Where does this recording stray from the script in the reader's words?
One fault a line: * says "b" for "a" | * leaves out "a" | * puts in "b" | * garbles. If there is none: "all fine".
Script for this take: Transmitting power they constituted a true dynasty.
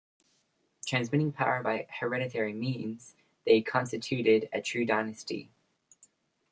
* puts in "by hereditary means"